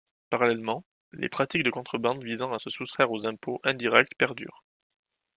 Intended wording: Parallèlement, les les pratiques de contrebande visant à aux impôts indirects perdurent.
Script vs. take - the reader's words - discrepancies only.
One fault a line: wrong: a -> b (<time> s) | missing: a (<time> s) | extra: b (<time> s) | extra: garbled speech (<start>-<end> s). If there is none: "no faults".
missing: les (1.3 s)
extra: se soustraire (2.6 s)